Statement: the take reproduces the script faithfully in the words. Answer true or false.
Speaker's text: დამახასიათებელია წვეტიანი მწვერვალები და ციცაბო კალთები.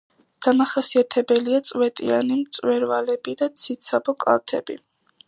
true